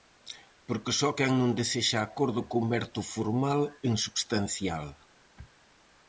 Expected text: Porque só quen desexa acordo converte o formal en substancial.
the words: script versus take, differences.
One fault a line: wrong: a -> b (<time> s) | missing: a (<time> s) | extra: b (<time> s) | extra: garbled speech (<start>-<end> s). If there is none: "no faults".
extra: non (1.4 s)